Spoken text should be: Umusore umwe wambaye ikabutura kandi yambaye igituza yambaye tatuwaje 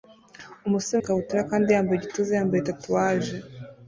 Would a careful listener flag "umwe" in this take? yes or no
yes